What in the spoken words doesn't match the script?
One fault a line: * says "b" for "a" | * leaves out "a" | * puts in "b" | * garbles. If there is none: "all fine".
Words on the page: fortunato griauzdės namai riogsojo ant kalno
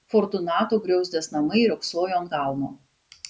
all fine